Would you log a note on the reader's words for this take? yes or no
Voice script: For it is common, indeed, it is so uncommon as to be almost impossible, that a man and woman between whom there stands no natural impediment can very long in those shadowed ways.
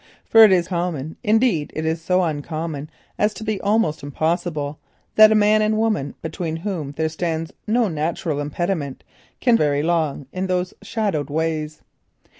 no